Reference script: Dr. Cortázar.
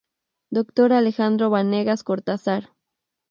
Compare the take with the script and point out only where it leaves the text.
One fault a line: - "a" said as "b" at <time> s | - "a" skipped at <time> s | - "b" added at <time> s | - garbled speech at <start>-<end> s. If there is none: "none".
- "Alejandro Vanegas" added at 0.9 s